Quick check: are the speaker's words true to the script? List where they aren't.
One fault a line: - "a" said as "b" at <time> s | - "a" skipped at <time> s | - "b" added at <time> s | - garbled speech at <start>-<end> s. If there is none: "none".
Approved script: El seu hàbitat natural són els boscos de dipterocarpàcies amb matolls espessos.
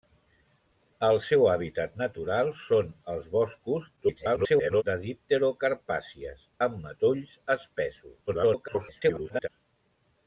- garbled speech at 4.0-4.8 s
- garbled speech at 8.3-9.5 s